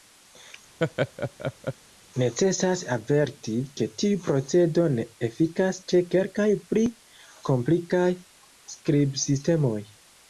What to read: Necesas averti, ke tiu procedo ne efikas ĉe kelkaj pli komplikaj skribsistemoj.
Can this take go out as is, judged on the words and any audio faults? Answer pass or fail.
fail